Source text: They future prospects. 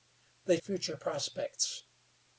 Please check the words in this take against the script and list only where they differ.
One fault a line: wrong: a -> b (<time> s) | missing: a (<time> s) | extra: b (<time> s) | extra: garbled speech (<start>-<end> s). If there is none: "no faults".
no faults